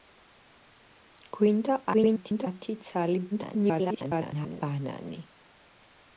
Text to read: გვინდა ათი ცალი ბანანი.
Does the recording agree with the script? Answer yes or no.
no